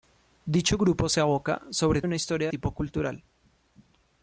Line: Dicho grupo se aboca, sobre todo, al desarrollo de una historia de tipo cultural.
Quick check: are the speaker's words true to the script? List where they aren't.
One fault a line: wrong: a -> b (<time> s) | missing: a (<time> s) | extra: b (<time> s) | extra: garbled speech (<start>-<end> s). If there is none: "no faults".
missing: todo al desarrollo (2.0 s)
missing: de (2.5 s)